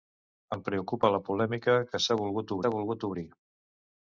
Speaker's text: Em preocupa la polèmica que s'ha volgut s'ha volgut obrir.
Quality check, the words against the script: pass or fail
pass